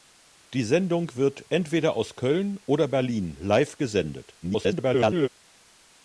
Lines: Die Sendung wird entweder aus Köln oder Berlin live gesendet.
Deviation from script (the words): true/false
true